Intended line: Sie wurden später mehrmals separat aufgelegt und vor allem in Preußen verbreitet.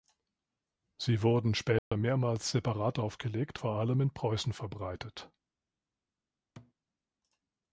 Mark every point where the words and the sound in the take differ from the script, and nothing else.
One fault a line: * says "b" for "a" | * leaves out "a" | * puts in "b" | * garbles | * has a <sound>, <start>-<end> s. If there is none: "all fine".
* has a dropout, 1.8-1.9 s
* leaves out "und"
* has a thud, 6.6-6.7 s